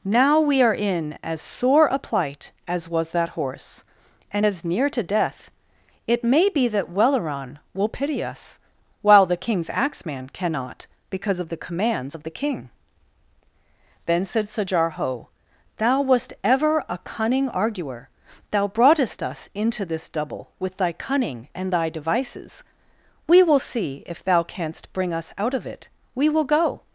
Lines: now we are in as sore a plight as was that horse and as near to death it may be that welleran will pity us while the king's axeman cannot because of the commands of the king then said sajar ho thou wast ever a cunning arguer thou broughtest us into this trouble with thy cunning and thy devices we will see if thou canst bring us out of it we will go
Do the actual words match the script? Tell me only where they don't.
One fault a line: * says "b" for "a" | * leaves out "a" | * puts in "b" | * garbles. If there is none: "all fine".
* says "double" for "trouble"